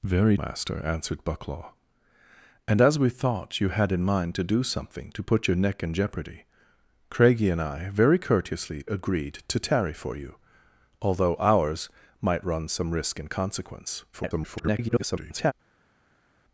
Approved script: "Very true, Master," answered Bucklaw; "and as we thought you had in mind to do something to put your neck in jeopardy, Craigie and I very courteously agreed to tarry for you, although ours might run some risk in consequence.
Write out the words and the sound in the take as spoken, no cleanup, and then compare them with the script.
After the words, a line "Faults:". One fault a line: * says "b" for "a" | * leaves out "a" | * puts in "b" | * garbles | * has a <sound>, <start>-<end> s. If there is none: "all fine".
"Very Master," answered Bucklaw; "and as we thought you had in mind to do something to put your neck in jeopardy, Craigie and I very courteously agreed to tarry for you, although ours might run some risk in consequence. [garbled]
Faults:
* leaves out "true"
* garbles